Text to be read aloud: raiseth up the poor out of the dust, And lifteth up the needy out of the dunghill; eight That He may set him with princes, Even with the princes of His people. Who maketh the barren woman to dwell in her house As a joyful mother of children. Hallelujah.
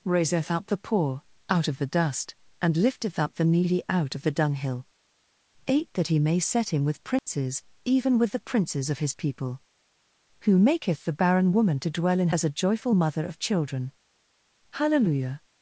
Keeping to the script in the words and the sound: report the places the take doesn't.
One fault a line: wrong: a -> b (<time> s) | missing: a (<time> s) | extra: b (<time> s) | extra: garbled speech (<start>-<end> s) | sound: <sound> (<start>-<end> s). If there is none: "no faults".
sound: dropout (7.2-7.3 s)
missing: her house (12.3 s)